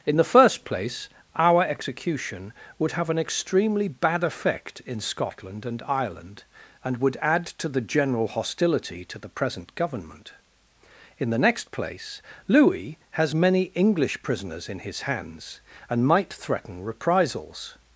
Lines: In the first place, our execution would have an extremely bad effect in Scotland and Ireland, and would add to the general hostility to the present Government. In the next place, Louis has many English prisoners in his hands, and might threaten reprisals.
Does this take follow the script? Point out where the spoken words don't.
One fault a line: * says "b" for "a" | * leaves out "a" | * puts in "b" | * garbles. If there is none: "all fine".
all fine